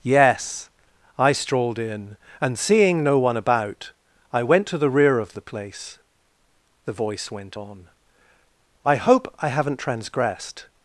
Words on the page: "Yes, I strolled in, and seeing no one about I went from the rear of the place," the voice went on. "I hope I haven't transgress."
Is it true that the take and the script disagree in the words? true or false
true